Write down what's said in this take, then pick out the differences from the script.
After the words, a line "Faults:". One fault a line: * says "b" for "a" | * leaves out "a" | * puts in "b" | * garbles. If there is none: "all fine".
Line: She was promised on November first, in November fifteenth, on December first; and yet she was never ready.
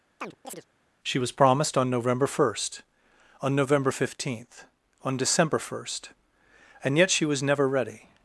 She was promised on November first, on November fifteenth, on December first; and yet she was never ready.
Faults:
* says "on" for "in"